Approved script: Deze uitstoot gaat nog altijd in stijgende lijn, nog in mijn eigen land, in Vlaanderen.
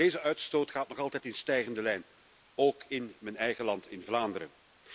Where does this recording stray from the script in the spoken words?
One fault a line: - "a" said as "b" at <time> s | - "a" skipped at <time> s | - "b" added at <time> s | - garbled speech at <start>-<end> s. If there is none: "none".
- "nog" said as "ook" at 2.5 s